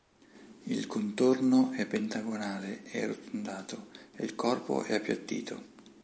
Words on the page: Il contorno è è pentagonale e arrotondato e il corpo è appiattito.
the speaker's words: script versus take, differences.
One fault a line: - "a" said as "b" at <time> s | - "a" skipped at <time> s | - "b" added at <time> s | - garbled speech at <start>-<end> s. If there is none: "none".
- "è" skipped at 1.9 s